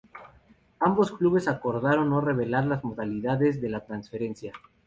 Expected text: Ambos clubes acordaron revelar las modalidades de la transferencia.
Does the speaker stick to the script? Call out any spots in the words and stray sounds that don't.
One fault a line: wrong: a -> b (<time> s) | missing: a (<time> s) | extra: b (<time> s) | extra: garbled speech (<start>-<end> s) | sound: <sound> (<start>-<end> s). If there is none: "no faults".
extra: no (2.1 s)